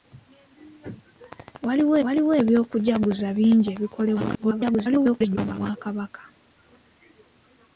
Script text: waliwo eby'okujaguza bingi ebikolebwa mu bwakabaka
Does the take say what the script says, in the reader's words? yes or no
no